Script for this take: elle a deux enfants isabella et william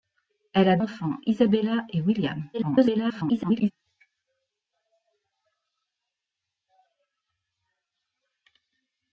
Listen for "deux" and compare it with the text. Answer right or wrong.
wrong